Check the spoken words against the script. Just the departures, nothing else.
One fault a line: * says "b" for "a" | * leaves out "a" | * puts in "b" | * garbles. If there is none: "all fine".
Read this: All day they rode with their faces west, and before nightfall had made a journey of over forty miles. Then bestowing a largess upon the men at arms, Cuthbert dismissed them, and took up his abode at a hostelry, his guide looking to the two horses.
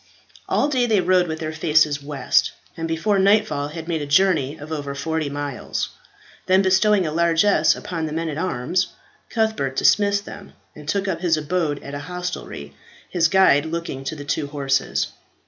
all fine